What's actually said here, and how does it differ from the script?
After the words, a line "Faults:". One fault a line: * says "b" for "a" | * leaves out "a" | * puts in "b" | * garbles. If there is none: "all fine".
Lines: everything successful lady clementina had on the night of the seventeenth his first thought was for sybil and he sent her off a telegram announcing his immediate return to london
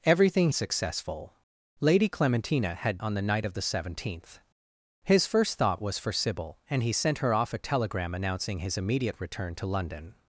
everything successful lady clementina had on the night of the seventeenth his first thought was for sybil and he sent her off a telegram announcing his immediate return to london
Faults:
all fine